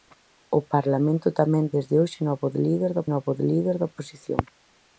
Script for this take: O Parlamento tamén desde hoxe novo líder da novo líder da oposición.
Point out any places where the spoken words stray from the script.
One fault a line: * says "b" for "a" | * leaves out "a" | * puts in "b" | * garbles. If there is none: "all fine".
all fine